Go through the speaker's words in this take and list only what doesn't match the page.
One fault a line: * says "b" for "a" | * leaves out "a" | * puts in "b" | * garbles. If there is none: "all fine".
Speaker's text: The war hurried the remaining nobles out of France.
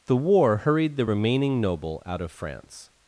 * says "noble" for "nobles"